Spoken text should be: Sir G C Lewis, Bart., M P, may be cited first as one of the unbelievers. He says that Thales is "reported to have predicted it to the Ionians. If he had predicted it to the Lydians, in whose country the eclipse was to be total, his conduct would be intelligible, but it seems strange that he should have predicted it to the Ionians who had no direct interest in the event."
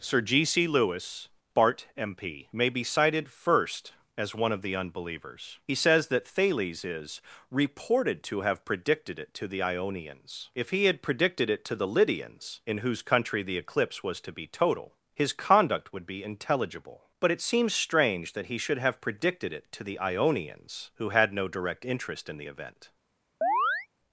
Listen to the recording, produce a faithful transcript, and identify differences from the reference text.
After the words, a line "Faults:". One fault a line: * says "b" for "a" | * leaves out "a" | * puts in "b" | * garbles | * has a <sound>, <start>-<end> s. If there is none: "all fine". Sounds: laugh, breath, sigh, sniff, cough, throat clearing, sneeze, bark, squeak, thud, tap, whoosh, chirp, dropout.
Sir G C Lewis, Bart., M P, may be cited first as one of the unbelievers. He says that Thales is "reported to have predicted it to the Ionians. If he had predicted it to the Lydians, in whose country the eclipse was to be total, his conduct would be intelligible, but it seems strange that he should have predicted it to the Ionians who had no direct interest in the event."
Faults:
* has a chirp, 23.4-23.9 s